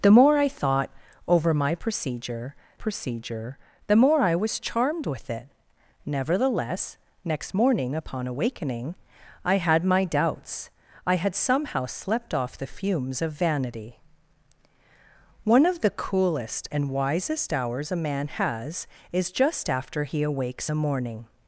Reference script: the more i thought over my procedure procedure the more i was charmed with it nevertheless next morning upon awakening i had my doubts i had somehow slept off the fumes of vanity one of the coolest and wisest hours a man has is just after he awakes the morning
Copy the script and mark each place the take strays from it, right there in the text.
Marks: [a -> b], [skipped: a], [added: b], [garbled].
the more i thought over my procedure procedure the more i was charmed with it nevertheless next morning upon awakening i had my doubts i had somehow slept off the fumes of vanity one of the coolest and wisest hours a man has is just after he awakes the morning